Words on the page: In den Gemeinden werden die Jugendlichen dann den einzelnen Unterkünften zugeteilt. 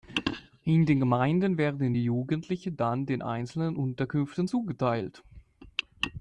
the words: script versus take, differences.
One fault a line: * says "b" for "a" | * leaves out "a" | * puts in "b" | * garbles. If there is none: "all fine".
all fine